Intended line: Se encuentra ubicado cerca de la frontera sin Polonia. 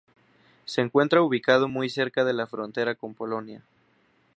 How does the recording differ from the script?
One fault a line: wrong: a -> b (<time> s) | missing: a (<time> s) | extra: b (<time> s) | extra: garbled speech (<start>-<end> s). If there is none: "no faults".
extra: muy (1.7 s)
wrong: sin -> con (2.9 s)